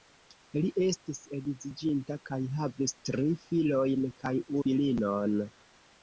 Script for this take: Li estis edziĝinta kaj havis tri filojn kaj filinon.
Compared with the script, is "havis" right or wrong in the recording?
right